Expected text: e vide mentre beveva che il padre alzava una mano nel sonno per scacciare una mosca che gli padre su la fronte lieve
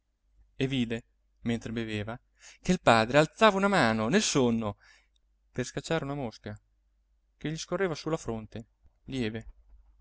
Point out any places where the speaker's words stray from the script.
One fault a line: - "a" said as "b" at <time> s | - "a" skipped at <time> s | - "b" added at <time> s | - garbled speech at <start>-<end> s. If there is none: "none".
- "padre" said as "scorreva" at 7.6 s